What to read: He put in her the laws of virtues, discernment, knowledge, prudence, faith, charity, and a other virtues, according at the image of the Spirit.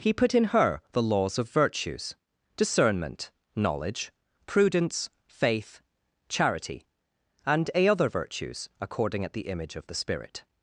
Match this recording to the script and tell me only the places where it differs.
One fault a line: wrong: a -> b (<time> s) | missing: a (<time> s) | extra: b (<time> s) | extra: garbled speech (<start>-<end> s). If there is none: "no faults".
no faults